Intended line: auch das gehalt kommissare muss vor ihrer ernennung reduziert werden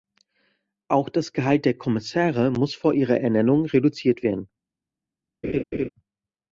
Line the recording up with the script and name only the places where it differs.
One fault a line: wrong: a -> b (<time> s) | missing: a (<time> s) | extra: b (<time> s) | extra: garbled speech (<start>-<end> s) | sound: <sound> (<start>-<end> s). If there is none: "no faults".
extra: der (1.6 s)
sound: laugh (5.4-5.9 s)